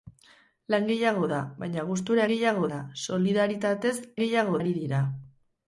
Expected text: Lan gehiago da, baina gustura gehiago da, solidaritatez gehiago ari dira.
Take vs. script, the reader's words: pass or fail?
pass